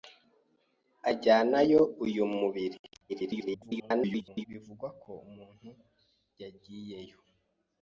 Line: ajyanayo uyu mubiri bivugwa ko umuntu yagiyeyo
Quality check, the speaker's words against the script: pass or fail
fail